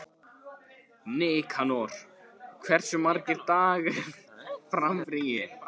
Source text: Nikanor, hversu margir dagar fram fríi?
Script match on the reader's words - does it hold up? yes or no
yes